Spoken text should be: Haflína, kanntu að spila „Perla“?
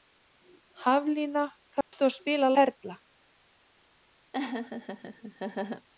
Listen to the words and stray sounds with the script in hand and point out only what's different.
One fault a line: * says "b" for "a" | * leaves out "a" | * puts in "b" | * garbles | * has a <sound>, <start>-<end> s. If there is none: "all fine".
* has a dropout, 1.8-1.9 s
* has a laugh, 4.3-5.9 s